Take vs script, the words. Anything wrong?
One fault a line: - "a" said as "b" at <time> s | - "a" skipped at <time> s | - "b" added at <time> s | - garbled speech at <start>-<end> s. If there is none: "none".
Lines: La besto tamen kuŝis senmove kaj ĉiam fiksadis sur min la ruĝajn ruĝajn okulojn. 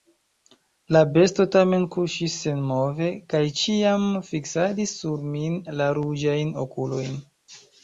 - "ruĝajn" skipped at 6.5 s